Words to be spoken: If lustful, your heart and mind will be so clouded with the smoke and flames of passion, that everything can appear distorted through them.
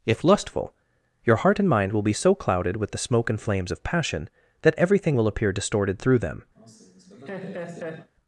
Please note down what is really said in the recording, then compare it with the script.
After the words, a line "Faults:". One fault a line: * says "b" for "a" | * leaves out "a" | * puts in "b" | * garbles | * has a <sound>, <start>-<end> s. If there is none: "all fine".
If lustful, your heart and mind will be so clouded with the smoke and flames of passion, that everything will appear distorted through them.
Faults:
* says "will" for "can"
* has a laugh, 6.6-8.1 s